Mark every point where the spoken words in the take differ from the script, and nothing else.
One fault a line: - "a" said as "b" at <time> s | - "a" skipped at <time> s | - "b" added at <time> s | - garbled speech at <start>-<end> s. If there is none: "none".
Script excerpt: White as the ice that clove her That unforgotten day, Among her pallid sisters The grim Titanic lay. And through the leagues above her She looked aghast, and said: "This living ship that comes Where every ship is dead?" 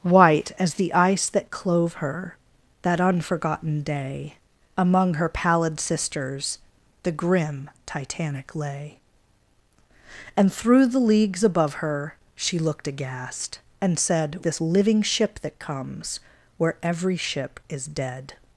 none